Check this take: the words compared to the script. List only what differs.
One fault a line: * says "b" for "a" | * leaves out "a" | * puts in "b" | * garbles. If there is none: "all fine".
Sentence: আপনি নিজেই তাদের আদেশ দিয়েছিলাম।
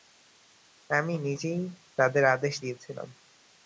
* says "আমি" for "আপনি"